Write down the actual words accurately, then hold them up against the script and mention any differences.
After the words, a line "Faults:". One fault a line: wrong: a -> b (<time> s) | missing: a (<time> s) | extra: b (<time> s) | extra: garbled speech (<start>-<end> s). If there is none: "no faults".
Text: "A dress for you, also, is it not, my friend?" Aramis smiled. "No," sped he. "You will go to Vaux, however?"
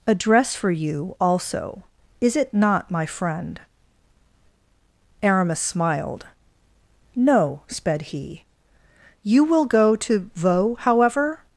"A dress for you, also, is it not, my friend?" Aramis smiled. "No," sped he. "You will go to Vaux, however?"
Faults:
no faults